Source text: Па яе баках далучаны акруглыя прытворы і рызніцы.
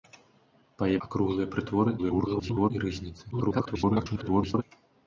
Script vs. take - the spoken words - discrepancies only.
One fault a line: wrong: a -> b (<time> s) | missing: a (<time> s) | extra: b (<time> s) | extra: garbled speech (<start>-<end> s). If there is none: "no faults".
missing: баках далучаны (0.9 s)
extra: garbled speech (2.0-2.7 s)
extra: garbled speech (3.3-4.6 s)